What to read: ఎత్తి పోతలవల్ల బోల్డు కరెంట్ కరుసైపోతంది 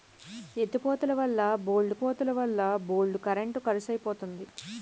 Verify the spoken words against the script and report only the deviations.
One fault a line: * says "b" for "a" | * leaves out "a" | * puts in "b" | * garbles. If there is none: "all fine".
* puts in "పోతలవల్ల బోల్డు"